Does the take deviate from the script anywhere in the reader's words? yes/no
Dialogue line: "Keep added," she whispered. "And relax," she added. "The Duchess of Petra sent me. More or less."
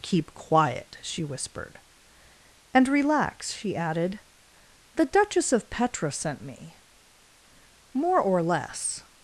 yes